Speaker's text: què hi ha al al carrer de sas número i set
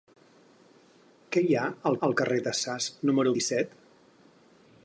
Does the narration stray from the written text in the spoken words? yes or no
no